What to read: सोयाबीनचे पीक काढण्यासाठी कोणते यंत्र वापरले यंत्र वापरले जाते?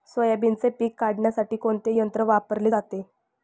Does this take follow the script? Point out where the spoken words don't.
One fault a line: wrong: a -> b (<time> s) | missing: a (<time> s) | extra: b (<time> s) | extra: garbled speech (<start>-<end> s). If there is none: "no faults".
missing: यंत्र वापरले (2.7 s)